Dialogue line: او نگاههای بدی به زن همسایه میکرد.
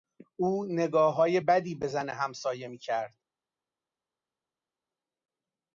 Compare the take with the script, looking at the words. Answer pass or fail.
pass